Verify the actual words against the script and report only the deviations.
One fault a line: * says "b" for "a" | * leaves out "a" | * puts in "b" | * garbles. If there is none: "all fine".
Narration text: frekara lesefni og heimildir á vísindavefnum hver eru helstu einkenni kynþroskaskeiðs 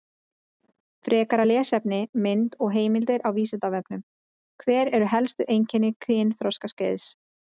* puts in "mynd"